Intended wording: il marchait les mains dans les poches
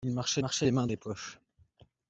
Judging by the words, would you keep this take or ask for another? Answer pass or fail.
fail